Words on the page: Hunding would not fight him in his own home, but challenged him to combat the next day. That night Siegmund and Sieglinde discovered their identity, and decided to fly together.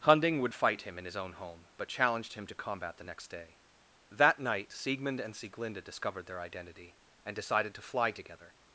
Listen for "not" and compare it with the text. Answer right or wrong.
wrong